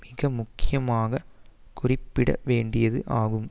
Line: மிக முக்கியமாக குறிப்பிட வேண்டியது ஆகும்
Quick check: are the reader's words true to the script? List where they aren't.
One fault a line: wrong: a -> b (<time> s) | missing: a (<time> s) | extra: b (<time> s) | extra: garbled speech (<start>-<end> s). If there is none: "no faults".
no faults